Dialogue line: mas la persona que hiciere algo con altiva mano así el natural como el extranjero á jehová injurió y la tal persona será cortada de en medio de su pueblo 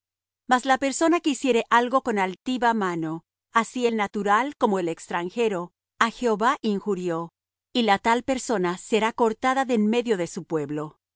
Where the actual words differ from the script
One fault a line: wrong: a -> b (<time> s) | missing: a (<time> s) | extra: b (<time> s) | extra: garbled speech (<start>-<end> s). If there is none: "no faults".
no faults